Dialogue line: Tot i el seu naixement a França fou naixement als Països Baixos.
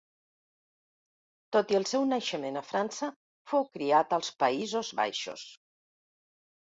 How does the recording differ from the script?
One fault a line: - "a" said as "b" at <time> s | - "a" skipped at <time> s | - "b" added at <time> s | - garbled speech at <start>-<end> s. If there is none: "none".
- "naixement" said as "criat" at 3.8 s